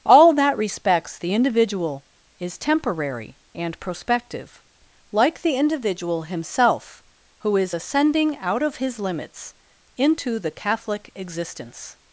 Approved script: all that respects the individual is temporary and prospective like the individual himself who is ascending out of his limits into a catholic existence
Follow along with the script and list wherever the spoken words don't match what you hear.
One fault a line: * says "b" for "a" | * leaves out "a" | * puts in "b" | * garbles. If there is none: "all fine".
* says "the" for "a"